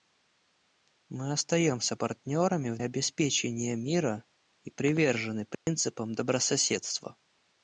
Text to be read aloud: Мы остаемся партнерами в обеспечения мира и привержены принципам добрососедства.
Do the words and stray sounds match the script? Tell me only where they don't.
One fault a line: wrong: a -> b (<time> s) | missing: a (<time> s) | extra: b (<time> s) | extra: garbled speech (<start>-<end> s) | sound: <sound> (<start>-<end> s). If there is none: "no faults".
sound: dropout (5.5-5.7 s)